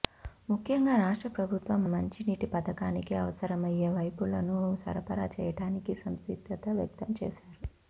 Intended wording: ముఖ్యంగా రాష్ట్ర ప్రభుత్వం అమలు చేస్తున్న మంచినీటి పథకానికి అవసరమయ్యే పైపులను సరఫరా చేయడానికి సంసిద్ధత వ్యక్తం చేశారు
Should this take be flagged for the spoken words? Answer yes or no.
yes